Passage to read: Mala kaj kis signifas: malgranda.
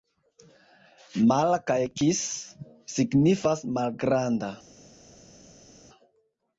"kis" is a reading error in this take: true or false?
false